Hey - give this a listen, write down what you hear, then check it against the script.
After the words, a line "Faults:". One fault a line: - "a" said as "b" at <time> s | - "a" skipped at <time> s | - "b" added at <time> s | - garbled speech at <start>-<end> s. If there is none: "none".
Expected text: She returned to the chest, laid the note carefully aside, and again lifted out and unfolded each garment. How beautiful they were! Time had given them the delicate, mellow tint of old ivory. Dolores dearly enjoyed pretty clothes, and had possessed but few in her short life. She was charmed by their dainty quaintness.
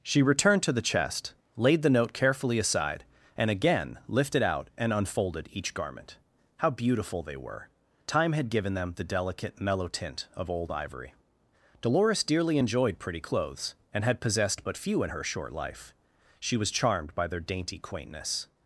She returned to the chest, laid the note carefully aside, and again lifted out and unfolded each garment. How beautiful they were! Time had given them the delicate, mellow tint of old ivory. Dolores dearly enjoyed pretty clothes, and had possessed but few in her short life. She was charmed by their dainty quaintness.
Faults:
none